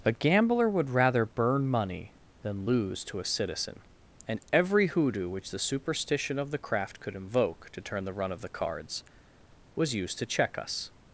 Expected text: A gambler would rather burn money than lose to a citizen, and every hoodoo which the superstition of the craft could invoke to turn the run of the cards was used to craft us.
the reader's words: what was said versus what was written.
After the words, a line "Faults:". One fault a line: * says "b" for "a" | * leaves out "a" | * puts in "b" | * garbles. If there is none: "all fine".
A gambler would rather burn money than lose to a citizen, and every hoodoo which the superstition of the craft could invoke to turn the run of the cards was used to check us.
Faults:
* says "check" for "craft"